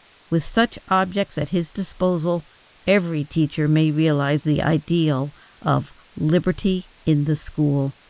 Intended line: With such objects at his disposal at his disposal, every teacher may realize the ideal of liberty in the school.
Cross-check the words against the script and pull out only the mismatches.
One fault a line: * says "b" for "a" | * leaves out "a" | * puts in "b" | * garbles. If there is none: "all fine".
* leaves out "at his disposal"